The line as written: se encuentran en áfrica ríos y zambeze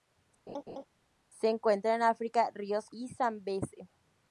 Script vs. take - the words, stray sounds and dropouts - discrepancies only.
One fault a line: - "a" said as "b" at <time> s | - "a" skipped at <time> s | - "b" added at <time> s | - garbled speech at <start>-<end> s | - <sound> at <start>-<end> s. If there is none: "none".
- laugh at 0.5-0.9 s